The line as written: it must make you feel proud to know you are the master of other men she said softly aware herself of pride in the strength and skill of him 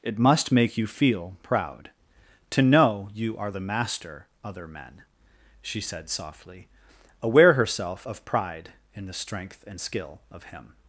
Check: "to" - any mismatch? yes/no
no